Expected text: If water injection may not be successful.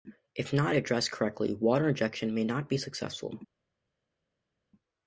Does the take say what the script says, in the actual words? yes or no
no